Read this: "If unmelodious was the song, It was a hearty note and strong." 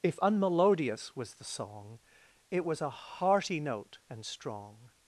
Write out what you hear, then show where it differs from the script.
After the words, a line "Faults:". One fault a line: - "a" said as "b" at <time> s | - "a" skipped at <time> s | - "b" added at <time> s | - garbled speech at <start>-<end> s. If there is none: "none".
"If unmelodious was the song, It was a hearty note and strong."
Faults:
none